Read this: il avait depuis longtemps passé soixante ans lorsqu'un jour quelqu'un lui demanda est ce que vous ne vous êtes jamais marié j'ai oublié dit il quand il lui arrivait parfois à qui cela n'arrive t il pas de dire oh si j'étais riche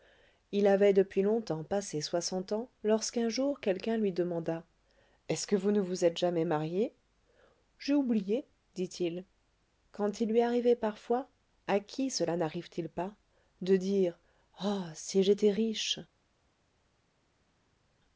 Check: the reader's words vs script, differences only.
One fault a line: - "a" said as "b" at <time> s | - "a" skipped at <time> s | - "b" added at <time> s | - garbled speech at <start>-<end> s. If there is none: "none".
none